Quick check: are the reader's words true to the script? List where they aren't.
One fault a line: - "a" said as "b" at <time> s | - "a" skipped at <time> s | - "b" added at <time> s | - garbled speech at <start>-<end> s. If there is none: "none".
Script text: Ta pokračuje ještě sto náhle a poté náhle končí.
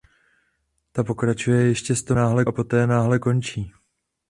none